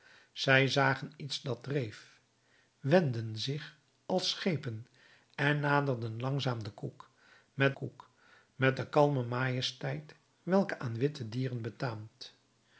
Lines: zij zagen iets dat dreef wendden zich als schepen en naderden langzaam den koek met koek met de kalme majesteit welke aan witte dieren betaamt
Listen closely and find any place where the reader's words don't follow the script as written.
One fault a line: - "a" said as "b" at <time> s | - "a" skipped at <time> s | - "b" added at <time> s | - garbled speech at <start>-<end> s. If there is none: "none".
none